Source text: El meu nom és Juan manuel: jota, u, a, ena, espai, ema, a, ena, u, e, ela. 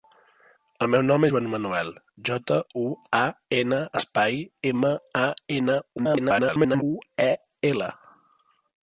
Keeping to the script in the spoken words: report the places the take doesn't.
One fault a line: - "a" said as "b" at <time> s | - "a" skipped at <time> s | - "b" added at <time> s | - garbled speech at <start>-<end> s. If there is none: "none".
- "és" skipped at 1.3 s
- garbled speech at 6.0-6.8 s